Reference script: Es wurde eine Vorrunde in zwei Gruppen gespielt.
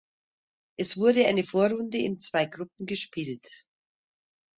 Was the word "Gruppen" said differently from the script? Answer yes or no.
no